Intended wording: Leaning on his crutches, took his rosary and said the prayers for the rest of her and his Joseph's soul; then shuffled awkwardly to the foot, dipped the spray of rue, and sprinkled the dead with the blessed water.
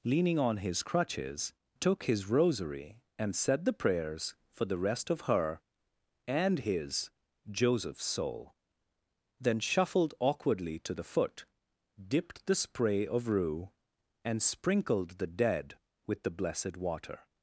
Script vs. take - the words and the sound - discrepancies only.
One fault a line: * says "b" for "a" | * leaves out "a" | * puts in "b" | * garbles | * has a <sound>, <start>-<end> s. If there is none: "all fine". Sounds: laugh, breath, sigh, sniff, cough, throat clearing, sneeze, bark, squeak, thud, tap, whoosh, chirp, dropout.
all fine